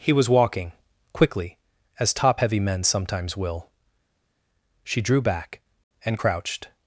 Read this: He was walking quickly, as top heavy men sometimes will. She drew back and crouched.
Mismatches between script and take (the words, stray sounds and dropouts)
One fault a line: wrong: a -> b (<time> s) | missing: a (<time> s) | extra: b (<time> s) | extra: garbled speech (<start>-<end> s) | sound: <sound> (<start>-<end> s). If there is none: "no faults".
no faults